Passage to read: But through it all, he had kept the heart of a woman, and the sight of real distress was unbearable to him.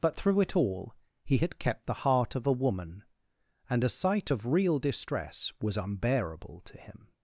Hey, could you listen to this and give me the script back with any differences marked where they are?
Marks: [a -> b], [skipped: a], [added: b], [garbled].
But through it all, he had kept the heart of a woman, and [the -> a] sight of real distress was unbearable to him.